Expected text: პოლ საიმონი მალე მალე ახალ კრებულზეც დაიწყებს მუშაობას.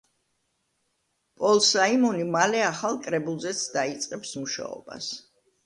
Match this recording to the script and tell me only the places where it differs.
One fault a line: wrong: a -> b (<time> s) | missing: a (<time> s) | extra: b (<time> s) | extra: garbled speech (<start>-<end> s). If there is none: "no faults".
missing: მალე (2.6 s)